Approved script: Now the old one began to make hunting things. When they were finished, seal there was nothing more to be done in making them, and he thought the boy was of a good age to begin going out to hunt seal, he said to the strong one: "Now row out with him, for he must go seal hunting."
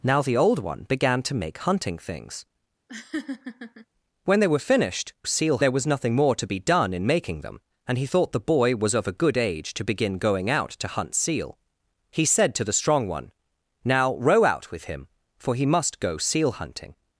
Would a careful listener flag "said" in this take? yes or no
no